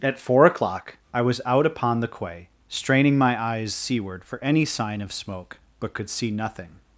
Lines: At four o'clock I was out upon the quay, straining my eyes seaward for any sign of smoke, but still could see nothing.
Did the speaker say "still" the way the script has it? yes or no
no